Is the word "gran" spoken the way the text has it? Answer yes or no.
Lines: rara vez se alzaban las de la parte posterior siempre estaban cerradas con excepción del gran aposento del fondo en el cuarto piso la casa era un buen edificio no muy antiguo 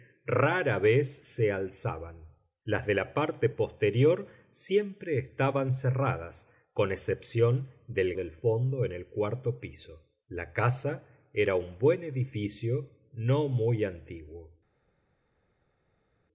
no